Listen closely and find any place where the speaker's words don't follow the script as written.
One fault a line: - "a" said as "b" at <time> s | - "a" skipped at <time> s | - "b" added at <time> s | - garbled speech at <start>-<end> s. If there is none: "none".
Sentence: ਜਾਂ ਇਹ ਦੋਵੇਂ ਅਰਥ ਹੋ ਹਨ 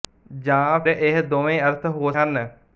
none